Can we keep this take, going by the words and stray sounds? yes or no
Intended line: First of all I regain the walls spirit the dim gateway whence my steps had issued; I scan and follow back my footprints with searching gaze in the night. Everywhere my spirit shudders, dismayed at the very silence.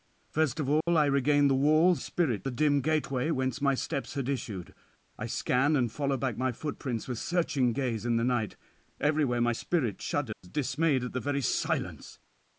no